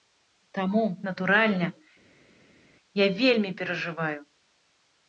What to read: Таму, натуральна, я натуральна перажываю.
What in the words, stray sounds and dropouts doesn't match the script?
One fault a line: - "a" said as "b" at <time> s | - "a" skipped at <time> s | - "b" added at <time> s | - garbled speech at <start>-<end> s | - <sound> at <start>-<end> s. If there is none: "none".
- "натуральна" said as "вельмі" at 3.2 s